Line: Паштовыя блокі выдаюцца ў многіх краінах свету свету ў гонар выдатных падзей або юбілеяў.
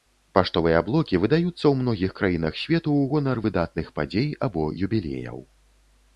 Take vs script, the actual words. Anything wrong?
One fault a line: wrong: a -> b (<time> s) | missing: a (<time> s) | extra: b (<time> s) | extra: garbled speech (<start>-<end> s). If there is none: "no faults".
missing: свету (2.9 s)